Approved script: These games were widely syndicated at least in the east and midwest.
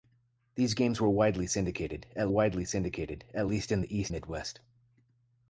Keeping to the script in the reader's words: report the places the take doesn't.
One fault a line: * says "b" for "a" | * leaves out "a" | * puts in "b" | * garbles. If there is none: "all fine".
* puts in "widely syndicated at"
* leaves out "and"